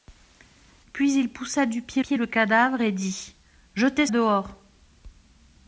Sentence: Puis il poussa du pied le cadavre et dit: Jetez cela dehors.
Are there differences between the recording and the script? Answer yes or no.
yes